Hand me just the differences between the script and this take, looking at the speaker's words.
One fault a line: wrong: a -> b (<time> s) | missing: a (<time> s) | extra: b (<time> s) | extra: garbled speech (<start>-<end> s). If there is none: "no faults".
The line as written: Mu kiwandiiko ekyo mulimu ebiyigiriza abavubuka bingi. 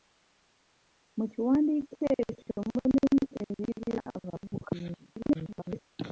extra: garbled speech (5.1-5.8 s)